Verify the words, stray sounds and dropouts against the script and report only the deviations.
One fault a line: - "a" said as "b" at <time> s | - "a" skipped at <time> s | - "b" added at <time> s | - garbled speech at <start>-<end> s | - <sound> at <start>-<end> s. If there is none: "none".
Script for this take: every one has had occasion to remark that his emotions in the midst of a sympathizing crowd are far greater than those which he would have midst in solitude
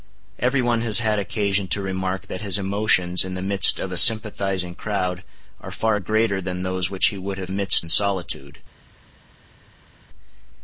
none